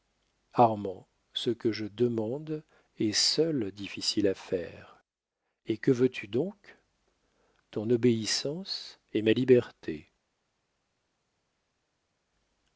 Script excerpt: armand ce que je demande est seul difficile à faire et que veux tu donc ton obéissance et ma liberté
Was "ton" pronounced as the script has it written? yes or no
yes